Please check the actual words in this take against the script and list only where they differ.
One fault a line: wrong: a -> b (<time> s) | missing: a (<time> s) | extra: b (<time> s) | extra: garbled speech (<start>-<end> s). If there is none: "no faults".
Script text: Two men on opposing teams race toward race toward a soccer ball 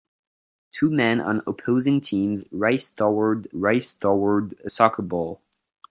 no faults